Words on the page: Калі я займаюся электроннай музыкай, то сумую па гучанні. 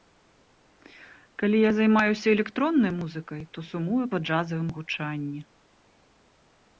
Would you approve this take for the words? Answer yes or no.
no